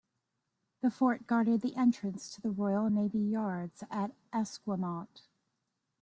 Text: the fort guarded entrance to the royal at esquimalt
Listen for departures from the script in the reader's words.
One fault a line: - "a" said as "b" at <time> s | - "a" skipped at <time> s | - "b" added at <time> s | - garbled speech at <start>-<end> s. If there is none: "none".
- "the" added at 1.6 s
- "navy yards" added at 2.9 s